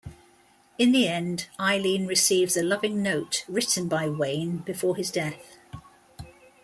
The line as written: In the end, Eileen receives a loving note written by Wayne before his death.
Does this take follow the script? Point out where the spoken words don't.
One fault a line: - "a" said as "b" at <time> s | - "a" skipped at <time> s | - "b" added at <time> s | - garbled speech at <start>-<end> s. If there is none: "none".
none